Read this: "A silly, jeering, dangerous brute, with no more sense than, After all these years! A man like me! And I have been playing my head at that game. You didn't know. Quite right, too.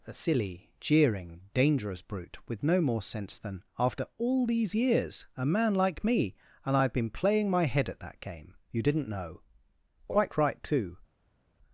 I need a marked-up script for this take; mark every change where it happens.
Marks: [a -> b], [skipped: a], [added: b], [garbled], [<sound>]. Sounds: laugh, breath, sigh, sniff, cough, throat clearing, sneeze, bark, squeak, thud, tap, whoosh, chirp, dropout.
"A silly, jeering, dangerous brute, with no more sense than, After all these years! A man like me! And I have been playing my head at that game. You didn't know. Quite right, too.